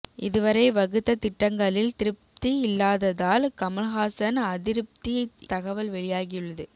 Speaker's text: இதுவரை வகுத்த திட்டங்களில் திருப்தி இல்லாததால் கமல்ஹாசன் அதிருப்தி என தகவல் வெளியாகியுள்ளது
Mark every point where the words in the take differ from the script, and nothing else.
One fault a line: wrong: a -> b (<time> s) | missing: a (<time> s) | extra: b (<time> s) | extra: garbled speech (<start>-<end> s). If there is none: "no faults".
missing: என (5.2 s)